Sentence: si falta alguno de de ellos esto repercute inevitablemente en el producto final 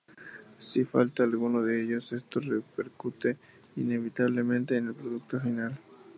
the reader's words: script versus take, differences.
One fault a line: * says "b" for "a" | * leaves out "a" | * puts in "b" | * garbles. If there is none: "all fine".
* leaves out "de"